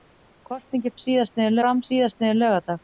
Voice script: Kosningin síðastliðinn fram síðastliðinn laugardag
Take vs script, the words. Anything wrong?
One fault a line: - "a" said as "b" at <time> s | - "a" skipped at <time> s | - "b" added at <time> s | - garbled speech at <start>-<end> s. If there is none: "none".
none